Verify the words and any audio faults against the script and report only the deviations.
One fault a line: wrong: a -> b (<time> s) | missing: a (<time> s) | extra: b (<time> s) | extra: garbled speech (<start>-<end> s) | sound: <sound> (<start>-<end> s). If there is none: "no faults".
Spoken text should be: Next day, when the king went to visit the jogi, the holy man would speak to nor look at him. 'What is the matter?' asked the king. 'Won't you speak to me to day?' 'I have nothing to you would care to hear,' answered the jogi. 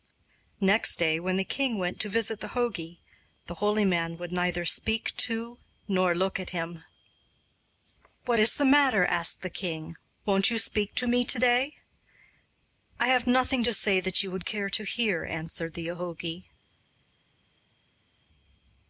extra: neither (4.3 s)
extra: say that (13.7 s)